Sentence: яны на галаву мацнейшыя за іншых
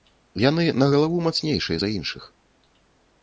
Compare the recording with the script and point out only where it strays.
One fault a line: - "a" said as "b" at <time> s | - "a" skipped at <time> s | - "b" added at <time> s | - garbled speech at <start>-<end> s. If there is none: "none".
none